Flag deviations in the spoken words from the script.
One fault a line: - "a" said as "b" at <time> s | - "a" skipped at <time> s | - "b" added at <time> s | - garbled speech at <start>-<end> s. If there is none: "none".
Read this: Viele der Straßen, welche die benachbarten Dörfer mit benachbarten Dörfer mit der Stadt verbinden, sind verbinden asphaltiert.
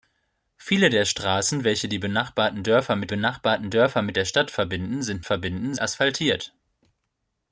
none